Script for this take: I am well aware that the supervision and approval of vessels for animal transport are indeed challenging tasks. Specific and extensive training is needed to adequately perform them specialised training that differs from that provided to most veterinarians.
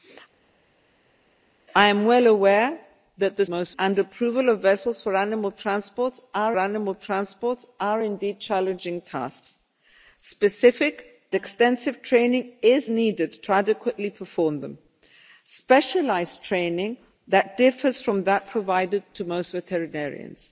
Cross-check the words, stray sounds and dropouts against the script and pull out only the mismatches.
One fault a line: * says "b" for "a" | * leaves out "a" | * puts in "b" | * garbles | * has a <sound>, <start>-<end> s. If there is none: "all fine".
* says "most" for "supervision"
* puts in "animal transport are"
* leaves out "and"